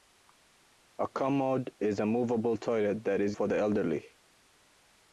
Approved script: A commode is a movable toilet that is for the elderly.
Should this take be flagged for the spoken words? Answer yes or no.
no